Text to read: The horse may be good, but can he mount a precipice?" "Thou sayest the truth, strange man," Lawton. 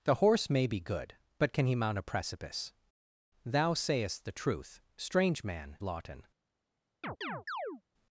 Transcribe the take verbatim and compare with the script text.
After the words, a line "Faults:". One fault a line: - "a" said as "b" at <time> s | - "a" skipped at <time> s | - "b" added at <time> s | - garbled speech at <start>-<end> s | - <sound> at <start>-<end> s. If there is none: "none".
The horse may be good, but can he mount a precipice?" "Thou sayest the truth, strange man," Lawton.
Faults:
- chirp at 7.0-7.8 s